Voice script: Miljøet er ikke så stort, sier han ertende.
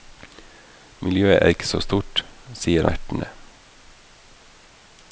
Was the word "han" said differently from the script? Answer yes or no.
yes